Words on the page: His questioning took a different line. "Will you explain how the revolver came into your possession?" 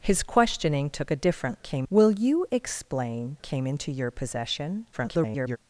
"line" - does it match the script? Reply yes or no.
no